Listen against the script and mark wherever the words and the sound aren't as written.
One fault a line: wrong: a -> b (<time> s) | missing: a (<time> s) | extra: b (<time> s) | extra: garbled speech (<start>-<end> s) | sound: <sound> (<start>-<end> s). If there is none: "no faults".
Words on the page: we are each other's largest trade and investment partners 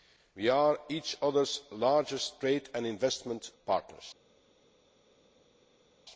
no faults